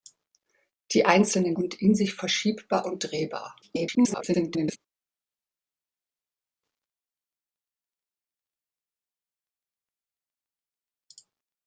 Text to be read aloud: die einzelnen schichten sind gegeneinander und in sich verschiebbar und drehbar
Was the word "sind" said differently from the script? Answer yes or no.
yes